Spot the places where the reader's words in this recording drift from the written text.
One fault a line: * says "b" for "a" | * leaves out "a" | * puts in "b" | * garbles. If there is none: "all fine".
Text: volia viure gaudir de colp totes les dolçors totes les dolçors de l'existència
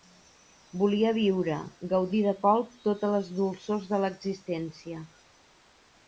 * leaves out "totes les dolçors"